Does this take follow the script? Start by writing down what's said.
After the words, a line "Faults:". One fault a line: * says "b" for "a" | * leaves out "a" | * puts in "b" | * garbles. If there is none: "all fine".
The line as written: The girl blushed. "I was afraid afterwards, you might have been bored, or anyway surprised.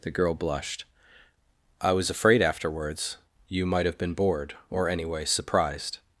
The girl blushed. "I was afraid afterwards, you might have been bored, or anyway surprised.
Faults:
all fine